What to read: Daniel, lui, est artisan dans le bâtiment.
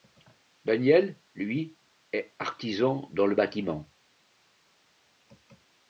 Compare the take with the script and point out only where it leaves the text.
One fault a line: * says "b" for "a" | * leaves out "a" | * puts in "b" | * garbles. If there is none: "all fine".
all fine